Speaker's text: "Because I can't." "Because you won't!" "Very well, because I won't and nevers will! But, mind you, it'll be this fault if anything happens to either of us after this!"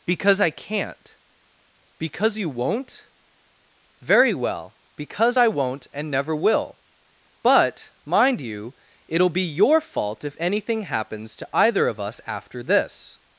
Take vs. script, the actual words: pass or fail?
fail